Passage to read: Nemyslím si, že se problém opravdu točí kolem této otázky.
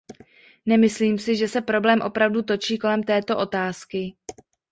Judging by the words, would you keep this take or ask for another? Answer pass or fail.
pass